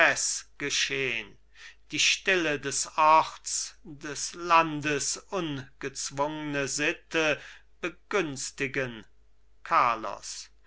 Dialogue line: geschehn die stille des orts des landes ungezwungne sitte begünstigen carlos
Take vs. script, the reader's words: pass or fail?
pass